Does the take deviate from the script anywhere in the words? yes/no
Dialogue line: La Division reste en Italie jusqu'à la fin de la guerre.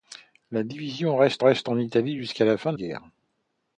yes